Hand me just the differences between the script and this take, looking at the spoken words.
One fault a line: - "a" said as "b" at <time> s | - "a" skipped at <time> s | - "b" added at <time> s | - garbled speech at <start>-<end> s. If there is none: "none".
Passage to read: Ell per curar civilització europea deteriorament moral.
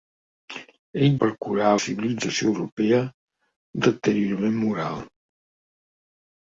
none